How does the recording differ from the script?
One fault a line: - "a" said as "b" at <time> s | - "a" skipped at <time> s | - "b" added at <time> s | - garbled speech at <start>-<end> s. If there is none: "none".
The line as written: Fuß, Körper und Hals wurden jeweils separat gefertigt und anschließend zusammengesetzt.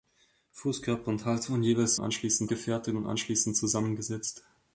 - "separat" said as "anschließend" at 2.0 s